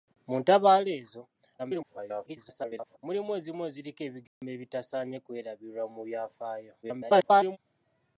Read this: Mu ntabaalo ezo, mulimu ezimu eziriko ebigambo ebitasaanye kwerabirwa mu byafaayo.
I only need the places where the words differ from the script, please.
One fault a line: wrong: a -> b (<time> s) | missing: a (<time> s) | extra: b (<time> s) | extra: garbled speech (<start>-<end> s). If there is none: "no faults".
extra: garbled speech (1.6-3.0 s)
extra: garbled speech (6.8-7.6 s)